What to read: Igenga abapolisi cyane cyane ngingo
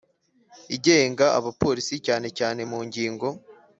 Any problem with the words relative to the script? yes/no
yes